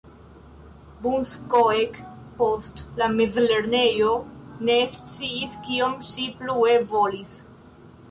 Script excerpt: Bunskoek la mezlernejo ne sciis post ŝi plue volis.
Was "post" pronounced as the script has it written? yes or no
no